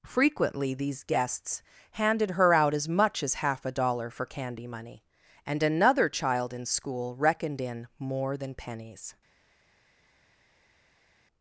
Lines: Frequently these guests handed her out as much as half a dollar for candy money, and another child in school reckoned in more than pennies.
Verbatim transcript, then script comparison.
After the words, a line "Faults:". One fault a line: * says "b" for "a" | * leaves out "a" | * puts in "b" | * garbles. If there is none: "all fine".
Frequently these guests handed her out as much as half a dollar for candy money, and another child in school reckoned in more than pennies.
Faults:
all fine